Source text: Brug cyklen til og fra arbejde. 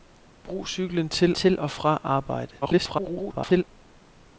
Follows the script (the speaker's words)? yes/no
no